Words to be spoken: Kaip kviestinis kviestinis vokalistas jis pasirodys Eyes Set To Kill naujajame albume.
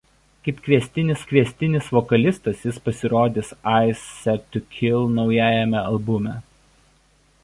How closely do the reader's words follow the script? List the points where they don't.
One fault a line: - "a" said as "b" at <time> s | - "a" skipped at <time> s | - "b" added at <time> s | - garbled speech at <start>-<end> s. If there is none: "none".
none